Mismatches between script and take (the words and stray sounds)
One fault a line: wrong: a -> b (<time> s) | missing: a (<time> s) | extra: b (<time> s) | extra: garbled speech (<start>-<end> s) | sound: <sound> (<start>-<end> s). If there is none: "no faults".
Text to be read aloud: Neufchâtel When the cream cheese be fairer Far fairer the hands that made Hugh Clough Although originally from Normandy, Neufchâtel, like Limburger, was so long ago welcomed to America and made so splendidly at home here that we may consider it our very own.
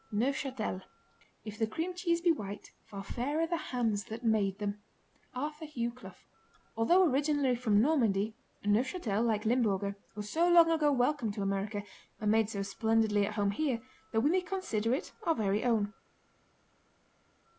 wrong: When -> If (1.4 s)
wrong: fairer -> white (2.3 s)
extra: them Arthur (4.6 s)